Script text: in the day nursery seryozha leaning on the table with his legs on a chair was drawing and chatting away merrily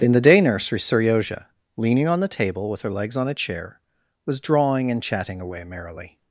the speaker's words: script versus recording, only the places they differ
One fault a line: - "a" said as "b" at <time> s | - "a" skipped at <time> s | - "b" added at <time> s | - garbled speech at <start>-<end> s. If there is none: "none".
- "his" said as "her" at 2.8 s